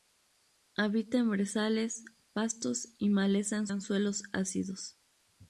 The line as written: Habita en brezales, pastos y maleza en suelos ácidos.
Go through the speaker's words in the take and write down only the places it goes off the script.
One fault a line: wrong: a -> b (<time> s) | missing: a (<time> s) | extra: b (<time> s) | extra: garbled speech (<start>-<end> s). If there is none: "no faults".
extra: en (3.7 s)